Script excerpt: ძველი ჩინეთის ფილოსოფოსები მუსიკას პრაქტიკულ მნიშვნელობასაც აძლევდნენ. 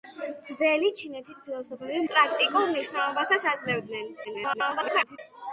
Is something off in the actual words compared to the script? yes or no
yes